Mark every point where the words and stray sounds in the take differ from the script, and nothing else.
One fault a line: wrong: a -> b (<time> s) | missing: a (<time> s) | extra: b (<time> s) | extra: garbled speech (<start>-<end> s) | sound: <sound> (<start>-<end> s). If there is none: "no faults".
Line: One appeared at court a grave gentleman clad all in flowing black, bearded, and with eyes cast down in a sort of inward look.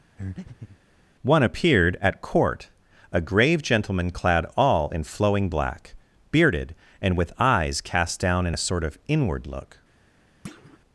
sound: breath (0.2-0.8 s)
sound: thud (10.4-10.8 s)